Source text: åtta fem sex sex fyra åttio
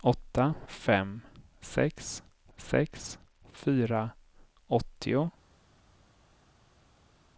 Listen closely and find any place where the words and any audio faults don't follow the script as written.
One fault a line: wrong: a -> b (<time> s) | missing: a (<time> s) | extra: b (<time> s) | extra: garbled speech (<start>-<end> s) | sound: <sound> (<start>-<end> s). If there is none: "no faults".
no faults